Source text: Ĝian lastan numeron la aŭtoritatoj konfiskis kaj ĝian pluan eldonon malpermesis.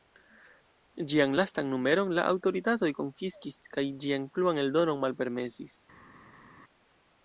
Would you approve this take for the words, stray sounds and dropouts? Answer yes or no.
yes